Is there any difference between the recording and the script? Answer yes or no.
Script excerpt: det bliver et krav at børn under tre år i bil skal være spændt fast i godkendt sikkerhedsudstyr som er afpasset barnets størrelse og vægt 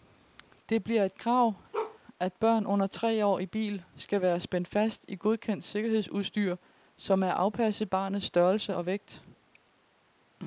no